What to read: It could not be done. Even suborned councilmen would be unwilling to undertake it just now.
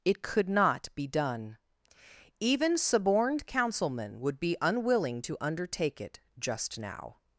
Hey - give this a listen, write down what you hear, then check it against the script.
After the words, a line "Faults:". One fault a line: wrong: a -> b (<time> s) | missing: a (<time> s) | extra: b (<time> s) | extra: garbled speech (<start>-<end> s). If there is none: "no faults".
It could not be done. Even suborned councilmen would be unwilling to undertake it just now.
Faults:
no faults